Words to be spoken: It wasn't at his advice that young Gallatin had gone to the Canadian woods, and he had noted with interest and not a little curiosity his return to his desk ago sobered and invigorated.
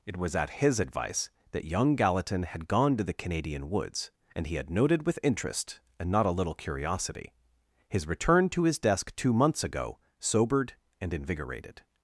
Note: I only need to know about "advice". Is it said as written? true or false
true